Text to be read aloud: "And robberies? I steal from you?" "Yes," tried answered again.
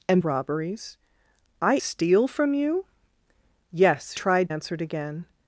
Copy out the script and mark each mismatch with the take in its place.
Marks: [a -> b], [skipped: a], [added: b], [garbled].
"And robberies? I steal from you?" "Yes," tried answered again.